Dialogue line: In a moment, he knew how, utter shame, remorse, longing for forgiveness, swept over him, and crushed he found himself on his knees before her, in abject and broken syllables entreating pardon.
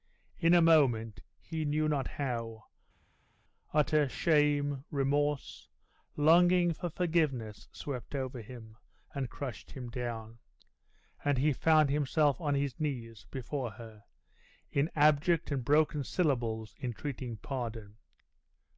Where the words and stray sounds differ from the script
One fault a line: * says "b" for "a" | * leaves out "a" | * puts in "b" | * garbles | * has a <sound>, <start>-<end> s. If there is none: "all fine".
* puts in "not"
* puts in "him down and"